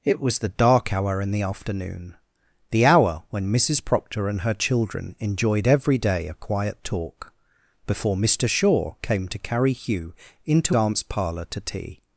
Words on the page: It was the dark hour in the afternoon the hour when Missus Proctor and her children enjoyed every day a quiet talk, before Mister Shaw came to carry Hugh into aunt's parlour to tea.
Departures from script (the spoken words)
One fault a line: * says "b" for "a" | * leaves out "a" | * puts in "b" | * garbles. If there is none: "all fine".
all fine